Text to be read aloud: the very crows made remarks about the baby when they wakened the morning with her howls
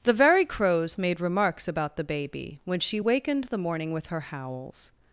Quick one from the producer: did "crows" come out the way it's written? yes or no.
yes